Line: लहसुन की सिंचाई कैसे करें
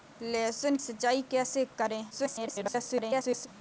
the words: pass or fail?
fail